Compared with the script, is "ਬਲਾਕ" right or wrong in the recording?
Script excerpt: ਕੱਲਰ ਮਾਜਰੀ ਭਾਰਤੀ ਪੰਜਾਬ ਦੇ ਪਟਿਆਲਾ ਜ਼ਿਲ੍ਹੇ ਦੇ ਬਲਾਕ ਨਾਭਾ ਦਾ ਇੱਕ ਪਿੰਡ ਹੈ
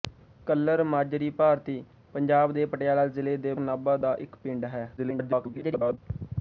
wrong